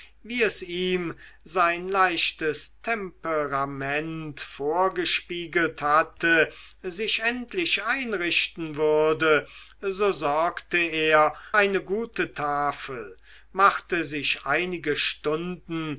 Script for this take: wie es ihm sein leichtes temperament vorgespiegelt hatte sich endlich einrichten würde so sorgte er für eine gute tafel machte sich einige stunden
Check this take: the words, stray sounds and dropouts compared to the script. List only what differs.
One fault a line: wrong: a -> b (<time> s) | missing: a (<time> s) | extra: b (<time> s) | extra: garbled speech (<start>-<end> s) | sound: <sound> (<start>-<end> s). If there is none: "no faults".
missing: für (11.3 s)